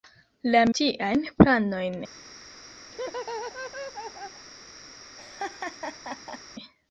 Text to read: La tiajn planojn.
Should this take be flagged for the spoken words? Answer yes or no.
no